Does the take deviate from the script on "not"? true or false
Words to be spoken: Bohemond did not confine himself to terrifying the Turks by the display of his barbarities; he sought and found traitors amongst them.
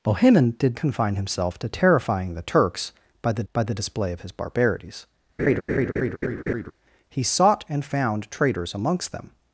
true